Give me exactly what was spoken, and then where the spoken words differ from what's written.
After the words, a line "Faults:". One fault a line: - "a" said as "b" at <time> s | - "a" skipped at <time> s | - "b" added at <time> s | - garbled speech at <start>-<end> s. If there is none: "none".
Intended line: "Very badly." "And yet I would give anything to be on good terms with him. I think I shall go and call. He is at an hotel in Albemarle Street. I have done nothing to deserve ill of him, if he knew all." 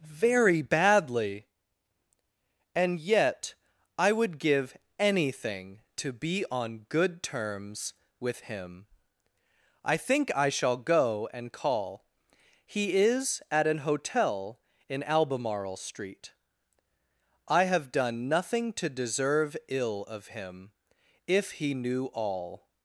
"Very badly." "And yet I would give anything to be on good terms with him. I think I shall go and call. He is at an hotel in Albemarle Street. I have done nothing to deserve ill of him, if he knew all."
Faults:
none